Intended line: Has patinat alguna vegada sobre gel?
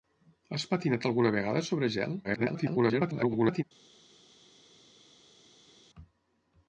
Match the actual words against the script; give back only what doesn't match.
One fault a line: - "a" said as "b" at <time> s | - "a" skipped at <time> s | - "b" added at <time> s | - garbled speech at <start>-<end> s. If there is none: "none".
- garbled speech at 2.2-3.6 s